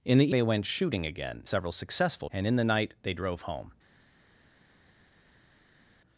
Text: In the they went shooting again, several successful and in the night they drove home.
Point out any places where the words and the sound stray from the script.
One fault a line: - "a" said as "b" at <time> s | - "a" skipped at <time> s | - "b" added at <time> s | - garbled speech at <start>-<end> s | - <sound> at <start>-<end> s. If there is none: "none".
none